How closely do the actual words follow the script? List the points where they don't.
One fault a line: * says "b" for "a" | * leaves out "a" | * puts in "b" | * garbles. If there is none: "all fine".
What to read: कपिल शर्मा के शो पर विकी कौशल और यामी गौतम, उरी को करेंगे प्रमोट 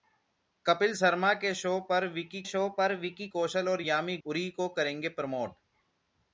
* puts in "शो पर विकी"
* leaves out "गौतम"